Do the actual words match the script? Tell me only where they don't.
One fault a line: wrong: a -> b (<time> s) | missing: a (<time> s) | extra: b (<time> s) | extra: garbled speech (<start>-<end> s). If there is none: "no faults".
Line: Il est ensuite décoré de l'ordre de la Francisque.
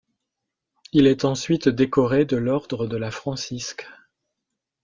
no faults